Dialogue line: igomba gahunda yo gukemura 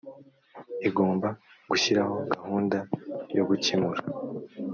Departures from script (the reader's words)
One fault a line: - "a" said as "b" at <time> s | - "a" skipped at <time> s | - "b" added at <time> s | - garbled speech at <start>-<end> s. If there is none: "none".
- "gushyiraho" added at 1.7 s